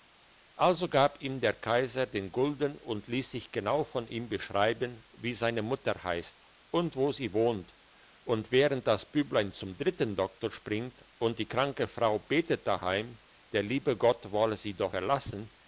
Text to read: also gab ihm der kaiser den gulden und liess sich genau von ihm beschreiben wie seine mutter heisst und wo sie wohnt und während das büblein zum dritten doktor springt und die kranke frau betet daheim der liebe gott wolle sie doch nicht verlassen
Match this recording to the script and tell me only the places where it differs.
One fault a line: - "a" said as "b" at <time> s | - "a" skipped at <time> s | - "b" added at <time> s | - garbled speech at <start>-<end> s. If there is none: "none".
- "nicht" skipped at 14.9 s